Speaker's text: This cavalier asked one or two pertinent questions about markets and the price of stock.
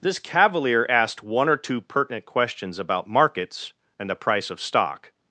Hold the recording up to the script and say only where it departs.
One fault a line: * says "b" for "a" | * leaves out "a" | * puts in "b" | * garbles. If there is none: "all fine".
all fine